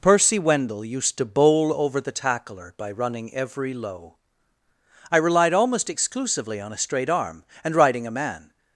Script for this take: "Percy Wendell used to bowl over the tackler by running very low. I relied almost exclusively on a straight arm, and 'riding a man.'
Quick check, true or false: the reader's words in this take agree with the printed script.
false